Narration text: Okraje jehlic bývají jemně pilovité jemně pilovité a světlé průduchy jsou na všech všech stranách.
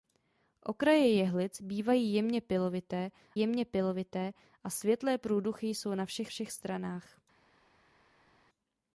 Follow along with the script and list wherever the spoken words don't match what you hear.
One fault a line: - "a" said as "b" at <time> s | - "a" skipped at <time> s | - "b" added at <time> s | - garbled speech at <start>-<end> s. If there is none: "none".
none